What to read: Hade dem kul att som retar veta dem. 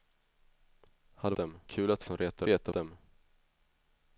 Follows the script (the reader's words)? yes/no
yes